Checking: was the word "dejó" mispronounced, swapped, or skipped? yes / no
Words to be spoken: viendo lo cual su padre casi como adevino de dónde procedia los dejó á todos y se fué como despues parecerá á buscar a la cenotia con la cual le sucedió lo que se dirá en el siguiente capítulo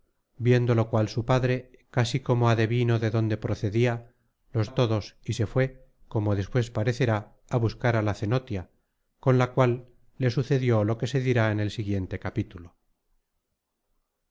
yes